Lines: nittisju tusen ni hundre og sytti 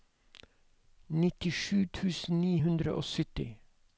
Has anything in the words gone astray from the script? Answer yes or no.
no